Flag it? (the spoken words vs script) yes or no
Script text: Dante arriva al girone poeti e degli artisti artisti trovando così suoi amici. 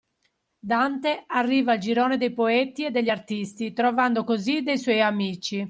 yes